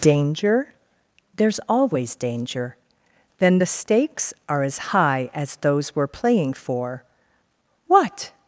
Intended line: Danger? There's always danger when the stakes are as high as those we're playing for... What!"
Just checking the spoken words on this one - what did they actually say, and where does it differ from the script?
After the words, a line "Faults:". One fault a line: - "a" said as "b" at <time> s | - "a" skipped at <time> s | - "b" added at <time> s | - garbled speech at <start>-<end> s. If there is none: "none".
Danger? There's always danger then the stakes are as high as those we're playing for... What!"
Faults:
- "when" said as "then" at 3.4 s